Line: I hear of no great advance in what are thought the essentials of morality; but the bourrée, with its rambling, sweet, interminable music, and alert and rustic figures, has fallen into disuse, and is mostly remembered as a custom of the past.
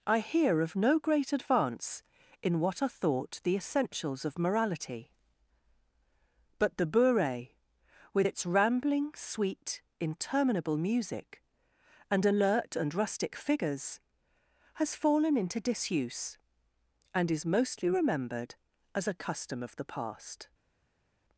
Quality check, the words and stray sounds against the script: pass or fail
pass